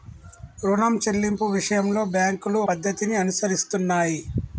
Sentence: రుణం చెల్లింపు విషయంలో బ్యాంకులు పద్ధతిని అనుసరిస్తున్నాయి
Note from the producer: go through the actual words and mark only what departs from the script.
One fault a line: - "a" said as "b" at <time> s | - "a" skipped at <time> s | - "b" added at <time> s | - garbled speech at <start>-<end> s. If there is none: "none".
none